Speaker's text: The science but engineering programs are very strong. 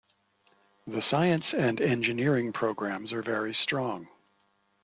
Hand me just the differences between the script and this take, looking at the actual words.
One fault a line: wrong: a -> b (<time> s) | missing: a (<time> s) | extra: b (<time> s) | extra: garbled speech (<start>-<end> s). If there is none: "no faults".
wrong: but -> and (1.5 s)